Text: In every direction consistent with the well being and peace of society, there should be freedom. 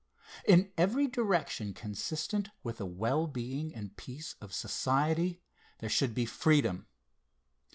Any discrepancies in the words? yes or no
no